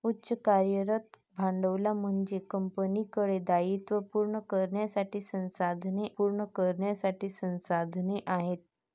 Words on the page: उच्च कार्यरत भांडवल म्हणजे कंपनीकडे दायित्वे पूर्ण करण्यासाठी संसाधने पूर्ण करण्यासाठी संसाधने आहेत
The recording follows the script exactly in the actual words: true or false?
true